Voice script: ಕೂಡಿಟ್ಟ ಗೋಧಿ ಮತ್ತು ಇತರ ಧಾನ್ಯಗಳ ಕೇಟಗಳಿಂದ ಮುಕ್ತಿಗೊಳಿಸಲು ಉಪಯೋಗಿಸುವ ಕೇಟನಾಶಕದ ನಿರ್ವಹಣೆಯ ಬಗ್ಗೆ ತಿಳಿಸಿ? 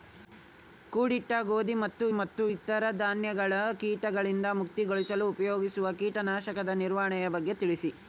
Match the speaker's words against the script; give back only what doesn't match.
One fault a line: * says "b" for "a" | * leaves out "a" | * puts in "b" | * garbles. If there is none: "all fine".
* puts in "ಮತ್ತು"